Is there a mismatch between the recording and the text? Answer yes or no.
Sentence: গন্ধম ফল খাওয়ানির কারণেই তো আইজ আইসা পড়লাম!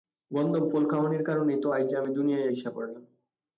yes